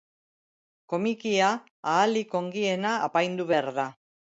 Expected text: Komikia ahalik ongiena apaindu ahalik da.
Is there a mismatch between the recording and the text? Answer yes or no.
yes